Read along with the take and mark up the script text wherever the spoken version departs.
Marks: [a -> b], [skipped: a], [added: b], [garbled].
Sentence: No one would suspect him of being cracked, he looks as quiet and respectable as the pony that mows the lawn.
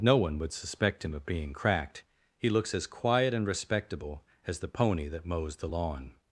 No one would suspect him of being cracked, he looks as quiet and respectable as the pony that mows the lawn.